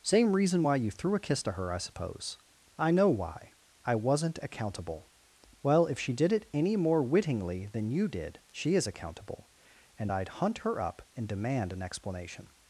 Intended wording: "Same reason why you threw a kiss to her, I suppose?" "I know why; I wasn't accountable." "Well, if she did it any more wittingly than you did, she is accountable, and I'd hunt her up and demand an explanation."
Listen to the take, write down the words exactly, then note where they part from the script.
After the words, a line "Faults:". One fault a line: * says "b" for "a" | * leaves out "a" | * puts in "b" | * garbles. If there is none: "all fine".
"Same reason why you threw a kiss to her, I suppose?" "I know why; I wasn't accountable." "Well, if she did it any more wittingly than you did, she is accountable, and I'd hunt her up and demand an explanation."
Faults:
all fine